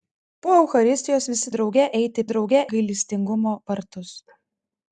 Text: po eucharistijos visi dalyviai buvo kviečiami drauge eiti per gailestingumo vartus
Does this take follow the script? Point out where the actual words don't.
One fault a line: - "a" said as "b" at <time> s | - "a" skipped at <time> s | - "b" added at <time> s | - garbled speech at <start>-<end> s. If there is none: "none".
- "dalyviai buvo kviečiami" skipped at 1.5 s
- "per" said as "drauge" at 2.3 s